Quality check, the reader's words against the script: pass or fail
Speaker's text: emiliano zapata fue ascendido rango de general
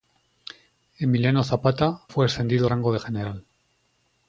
pass